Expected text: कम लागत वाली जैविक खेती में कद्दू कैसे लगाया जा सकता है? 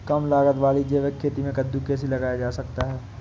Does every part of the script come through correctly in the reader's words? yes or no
yes